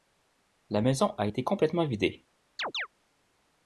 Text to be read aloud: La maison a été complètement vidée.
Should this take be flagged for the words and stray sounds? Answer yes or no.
yes